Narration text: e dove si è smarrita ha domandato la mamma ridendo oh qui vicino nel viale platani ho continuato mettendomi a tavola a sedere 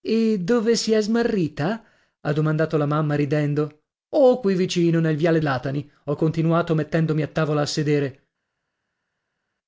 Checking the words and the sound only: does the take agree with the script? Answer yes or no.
yes